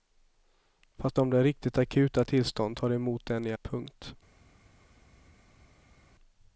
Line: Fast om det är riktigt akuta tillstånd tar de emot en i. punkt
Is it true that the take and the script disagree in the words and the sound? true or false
false